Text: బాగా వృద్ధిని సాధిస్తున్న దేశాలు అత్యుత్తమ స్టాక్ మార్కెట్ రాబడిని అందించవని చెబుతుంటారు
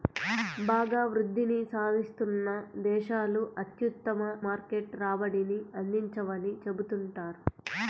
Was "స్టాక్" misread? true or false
true